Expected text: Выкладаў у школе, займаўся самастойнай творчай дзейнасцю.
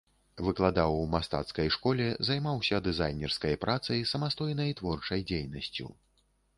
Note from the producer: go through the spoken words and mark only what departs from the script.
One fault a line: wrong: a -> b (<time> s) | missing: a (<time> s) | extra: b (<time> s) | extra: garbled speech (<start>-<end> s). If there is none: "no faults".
extra: мастацкай (1.1 s)
extra: дызайнерскай працай (2.9 s)